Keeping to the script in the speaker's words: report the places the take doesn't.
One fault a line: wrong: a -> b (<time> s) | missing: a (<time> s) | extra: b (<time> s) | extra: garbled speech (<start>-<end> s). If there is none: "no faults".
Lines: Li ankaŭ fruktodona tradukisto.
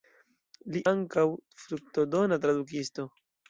no faults